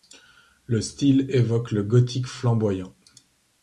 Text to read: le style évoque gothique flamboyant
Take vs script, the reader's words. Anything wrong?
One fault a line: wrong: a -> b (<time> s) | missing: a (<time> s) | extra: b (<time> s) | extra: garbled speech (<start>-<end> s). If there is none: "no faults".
extra: le (1.7 s)